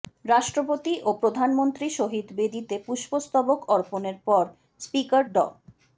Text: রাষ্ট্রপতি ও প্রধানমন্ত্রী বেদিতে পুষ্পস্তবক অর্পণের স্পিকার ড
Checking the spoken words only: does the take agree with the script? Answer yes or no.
no